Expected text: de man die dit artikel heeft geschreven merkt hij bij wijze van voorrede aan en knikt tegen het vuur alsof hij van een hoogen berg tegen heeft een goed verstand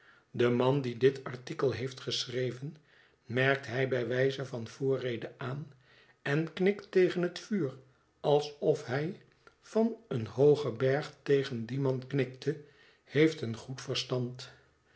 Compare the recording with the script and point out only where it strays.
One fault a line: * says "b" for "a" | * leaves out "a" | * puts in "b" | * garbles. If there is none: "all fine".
* puts in "dien man knikte"